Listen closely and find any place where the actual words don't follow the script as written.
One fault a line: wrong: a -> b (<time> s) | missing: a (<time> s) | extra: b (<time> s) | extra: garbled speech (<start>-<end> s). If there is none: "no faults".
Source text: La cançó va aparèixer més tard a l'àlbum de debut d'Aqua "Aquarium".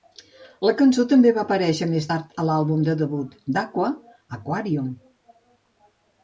extra: també (1.1 s)